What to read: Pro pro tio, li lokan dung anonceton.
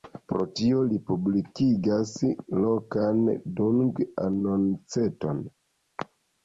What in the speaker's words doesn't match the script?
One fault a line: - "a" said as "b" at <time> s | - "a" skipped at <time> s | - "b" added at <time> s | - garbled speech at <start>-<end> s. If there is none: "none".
- "pro" skipped at 0.5 s
- "publikigas" added at 1.1 s